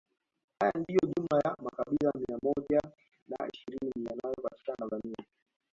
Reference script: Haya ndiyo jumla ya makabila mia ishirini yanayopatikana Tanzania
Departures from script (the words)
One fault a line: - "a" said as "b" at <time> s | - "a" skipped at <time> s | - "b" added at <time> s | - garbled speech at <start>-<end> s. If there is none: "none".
- "moja na" added at 2.4 s